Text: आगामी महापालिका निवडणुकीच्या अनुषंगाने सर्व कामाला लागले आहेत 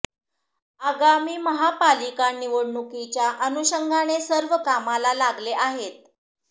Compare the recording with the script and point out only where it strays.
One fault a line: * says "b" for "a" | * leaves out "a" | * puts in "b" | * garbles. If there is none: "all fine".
all fine